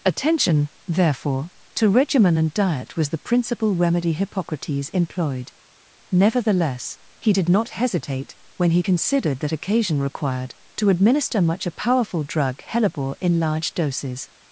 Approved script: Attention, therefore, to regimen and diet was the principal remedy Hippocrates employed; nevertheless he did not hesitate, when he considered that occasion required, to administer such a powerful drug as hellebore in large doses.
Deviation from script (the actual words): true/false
true